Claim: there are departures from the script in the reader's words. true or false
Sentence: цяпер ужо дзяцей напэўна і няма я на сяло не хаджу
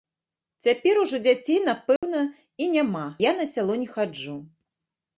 false